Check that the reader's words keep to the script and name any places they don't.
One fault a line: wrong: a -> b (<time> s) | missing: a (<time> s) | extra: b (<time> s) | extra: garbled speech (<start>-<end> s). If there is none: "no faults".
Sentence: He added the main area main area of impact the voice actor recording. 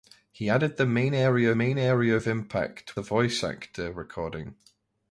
no faults